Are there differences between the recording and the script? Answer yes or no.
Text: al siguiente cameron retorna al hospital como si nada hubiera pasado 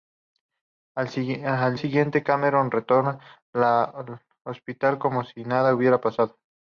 no